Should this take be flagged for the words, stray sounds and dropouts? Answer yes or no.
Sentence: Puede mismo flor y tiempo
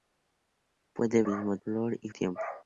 no